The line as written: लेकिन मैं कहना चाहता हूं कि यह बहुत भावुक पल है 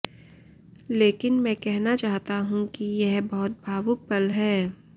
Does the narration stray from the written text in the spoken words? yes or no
no